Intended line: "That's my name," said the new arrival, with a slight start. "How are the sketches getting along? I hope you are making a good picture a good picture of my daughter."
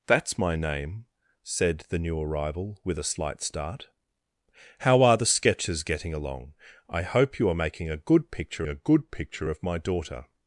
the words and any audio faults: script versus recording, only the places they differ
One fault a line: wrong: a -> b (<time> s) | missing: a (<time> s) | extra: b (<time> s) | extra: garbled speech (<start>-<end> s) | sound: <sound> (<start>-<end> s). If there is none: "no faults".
no faults